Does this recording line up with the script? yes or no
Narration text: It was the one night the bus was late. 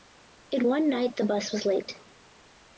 no